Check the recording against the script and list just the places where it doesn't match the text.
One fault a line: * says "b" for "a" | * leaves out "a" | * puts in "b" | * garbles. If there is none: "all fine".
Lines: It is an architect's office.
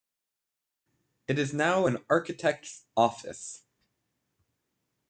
* puts in "now"